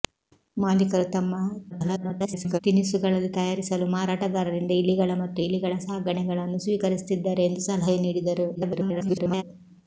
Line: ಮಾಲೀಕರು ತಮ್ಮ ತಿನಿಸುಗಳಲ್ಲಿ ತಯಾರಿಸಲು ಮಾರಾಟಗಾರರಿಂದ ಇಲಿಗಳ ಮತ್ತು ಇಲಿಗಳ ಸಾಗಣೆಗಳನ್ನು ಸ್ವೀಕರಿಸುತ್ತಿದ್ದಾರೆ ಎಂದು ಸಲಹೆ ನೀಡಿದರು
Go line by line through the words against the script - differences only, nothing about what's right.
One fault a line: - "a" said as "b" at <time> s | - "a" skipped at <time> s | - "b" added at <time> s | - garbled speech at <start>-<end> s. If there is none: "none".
- garbled speech at 1.7-2.6 s
- garbled speech at 8.5-9.4 s